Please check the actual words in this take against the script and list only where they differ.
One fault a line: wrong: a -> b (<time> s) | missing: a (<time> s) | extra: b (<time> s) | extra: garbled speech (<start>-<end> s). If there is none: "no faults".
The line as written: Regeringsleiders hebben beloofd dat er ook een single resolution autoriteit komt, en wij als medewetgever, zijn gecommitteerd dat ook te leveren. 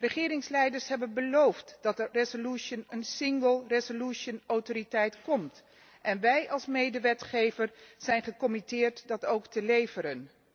wrong: ook -> resolution (2.1 s)